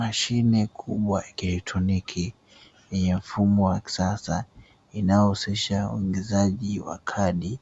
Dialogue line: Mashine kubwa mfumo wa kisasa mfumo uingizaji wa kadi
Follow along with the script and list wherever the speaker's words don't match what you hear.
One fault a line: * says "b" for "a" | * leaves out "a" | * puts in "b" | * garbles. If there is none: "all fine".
* puts in "ya kielektroniki yenye"
* says "inayohusisha" for "mfumo"